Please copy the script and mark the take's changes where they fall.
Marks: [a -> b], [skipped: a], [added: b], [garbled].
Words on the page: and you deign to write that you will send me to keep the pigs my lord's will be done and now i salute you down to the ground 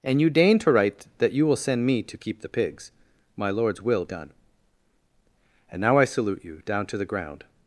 and you deign to write that you will send me to keep the pigs my lord's will [skipped: be] done and now i salute you down to the ground